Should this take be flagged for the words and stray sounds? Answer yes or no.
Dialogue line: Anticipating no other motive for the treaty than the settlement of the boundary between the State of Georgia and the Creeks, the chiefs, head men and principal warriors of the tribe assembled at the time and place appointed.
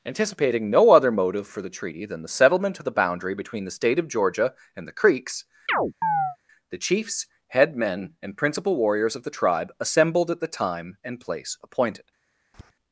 yes